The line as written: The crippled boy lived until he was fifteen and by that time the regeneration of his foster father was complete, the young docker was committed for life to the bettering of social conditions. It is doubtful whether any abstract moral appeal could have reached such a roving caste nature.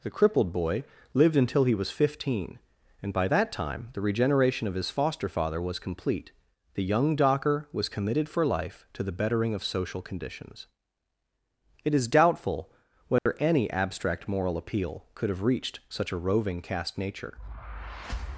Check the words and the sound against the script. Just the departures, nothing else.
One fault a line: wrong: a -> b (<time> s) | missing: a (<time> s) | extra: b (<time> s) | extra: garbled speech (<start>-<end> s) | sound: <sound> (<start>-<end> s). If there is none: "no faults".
sound: dropout (13.2-13.3 s)